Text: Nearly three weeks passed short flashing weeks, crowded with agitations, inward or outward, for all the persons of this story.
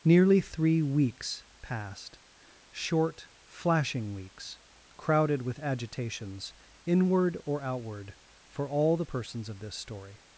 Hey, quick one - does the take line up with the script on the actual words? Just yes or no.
yes